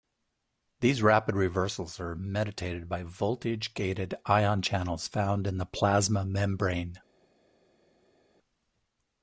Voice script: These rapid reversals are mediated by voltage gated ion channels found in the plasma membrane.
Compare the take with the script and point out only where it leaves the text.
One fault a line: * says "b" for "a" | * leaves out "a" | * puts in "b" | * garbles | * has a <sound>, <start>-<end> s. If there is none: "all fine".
all fine